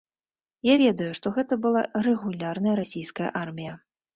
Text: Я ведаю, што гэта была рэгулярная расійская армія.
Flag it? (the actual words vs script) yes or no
no